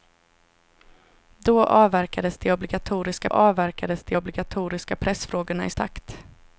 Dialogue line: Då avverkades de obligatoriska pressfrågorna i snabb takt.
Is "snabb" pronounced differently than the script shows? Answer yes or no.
yes